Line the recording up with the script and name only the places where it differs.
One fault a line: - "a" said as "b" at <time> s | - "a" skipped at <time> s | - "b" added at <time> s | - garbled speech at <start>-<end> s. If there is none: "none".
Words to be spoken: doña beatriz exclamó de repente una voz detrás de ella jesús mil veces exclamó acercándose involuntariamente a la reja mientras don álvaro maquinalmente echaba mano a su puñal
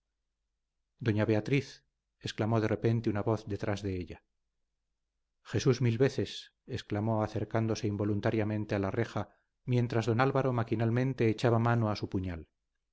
none